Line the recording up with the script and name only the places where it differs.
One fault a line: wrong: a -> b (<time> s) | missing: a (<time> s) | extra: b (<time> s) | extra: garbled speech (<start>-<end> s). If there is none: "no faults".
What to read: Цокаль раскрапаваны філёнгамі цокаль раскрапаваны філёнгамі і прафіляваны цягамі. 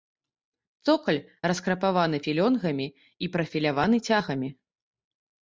missing: цокаль раскрапаваны філёнгамі (2.9 s)